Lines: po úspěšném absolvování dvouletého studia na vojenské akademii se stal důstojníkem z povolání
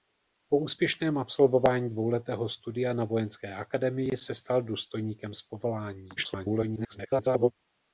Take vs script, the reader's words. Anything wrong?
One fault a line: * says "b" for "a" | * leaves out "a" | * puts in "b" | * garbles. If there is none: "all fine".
* garbles